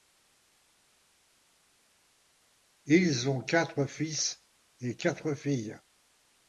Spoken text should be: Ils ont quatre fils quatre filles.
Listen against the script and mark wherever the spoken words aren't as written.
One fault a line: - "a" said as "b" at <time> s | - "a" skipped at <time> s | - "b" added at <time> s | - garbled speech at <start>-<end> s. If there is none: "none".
- "et" added at 4.8 s